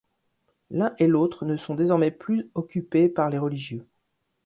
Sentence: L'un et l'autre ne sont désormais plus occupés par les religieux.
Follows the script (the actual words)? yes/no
yes